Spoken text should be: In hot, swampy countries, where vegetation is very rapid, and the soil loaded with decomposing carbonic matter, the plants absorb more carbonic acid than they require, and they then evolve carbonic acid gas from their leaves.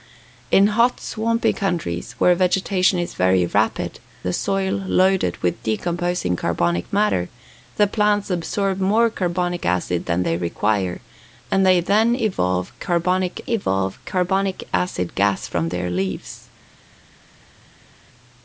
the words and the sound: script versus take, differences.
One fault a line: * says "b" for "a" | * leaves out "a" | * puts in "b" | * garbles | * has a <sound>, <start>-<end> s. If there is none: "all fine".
* leaves out "and"
* puts in "evolve carbonic"